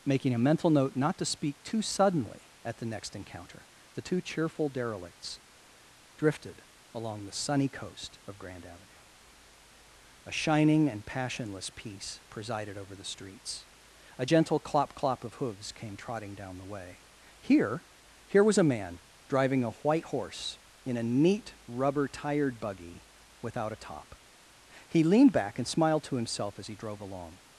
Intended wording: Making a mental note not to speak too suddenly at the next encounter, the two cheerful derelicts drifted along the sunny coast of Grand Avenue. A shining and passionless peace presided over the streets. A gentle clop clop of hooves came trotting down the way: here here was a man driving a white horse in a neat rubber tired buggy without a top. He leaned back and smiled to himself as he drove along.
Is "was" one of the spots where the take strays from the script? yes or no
no